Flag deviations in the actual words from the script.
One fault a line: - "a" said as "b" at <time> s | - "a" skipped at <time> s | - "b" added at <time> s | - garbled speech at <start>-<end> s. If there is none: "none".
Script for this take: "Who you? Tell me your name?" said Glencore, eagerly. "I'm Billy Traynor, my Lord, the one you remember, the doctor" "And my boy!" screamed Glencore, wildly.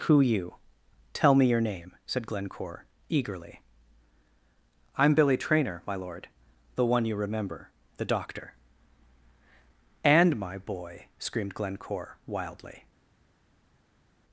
none